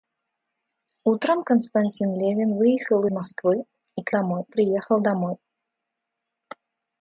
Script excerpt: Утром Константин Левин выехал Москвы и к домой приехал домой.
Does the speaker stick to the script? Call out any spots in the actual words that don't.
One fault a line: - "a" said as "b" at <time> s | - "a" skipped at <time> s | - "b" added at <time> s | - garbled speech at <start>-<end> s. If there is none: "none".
none